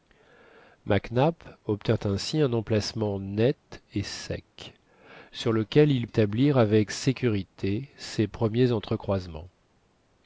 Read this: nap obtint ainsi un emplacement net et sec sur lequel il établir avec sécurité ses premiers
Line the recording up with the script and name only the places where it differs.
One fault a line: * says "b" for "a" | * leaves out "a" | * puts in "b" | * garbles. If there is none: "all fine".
all fine